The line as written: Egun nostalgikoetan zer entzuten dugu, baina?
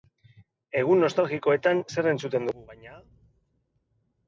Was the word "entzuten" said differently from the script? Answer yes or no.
no